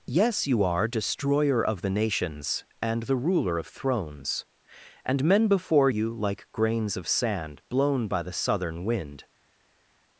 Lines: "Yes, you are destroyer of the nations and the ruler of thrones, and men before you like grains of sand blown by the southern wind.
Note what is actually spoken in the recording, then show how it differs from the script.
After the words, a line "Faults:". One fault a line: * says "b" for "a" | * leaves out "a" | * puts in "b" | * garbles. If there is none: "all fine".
"Yes, you are destroyer of the nations and the ruler of thrones, and men before you like grains of sand blown by the southern wind.
Faults:
all fine